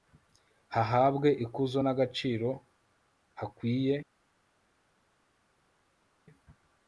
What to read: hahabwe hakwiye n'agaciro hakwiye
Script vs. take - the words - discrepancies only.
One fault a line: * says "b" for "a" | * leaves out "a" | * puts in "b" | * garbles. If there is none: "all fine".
* says "ikuzo" for "hakwiye"